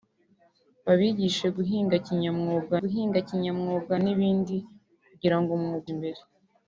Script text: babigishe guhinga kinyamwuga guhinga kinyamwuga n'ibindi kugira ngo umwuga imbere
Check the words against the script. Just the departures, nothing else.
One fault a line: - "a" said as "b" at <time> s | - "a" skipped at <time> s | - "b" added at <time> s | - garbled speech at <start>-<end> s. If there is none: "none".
none